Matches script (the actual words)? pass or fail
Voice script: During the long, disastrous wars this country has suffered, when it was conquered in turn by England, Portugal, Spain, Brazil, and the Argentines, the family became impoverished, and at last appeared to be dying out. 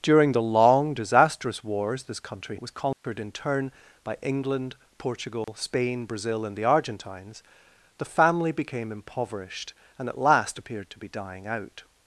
fail